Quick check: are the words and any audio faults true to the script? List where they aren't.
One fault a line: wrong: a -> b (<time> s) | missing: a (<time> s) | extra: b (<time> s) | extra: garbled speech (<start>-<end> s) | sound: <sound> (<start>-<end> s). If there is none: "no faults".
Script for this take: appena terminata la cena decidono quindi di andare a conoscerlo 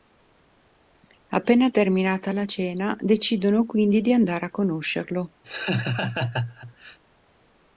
sound: laugh (5.4-7.0 s)